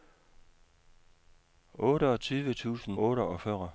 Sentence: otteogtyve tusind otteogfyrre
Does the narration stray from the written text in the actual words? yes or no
no